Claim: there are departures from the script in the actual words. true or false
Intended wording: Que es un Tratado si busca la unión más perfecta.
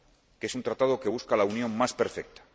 true